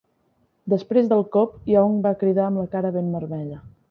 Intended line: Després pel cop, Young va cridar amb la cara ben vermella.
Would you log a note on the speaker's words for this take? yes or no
yes